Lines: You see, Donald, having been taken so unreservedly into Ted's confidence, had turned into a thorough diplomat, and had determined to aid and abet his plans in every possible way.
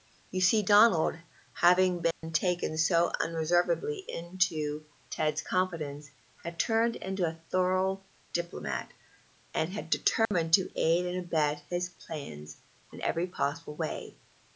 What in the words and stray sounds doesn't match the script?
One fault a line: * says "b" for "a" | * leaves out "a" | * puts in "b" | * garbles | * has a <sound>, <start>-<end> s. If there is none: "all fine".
* has a dropout, 2.1-2.2 s
* has a dropout, 10.3-10.3 s